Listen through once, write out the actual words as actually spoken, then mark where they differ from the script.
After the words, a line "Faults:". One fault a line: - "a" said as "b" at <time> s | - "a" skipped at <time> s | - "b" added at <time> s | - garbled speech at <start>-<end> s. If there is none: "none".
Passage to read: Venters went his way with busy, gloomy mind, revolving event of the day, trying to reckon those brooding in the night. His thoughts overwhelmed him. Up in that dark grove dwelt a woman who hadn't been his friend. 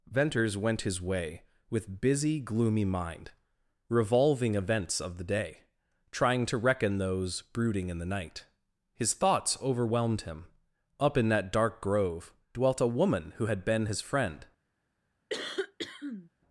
Venters went his way with busy, gloomy mind, revolving events of the day, trying to reckon those brooding in the night. His thoughts overwhelmed him. Up in that dark grove dwelt a woman who had been his friend.
Faults:
- "event" said as "events" at 4.5 s
- "hadn't" said as "had" at 13.4 s